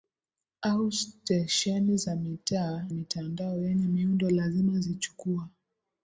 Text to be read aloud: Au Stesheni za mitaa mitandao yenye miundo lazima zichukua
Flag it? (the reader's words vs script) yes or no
no